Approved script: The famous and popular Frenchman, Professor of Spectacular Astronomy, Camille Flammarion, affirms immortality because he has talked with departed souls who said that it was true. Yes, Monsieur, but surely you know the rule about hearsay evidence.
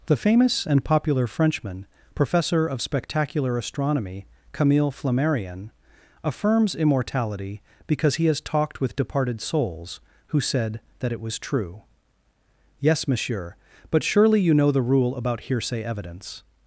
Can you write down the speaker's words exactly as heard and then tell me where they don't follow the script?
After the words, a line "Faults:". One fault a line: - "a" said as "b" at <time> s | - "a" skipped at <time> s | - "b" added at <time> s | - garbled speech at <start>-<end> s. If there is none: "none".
The famous and popular Frenchman, Professor of Spectacular Astronomy, Camille Flammarion, affirms immortality because he has talked with departed souls who said that it was true. Yes, Monsieur, but surely you know the rule about hearsay evidence.
Faults:
none